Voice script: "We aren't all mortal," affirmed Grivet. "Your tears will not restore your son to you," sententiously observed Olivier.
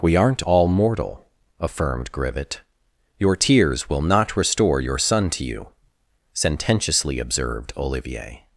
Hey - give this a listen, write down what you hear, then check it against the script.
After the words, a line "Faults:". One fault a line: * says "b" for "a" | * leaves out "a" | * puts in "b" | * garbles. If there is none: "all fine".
"We aren't all mortal," affirmed Grivet. "Your tears will not restore your son to you," sententiously observed Olivier.
Faults:
all fine